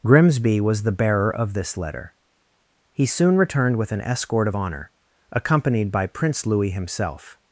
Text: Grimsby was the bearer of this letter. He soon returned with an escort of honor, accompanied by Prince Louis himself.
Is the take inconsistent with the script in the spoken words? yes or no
no